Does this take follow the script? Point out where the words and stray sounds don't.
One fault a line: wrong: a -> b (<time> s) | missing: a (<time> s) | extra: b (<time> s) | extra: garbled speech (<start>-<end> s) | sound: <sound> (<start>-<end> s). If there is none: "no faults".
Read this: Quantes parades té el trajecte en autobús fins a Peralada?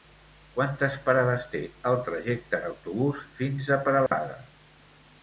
sound: dropout (4.1-4.1 s)